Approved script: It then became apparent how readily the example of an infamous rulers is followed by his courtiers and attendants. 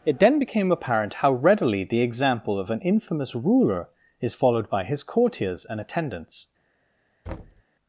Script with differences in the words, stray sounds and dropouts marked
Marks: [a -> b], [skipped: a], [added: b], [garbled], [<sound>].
It then became apparent how readily the example of an infamous [rulers -> ruler] is followed by his courtiers and attendants. [thud]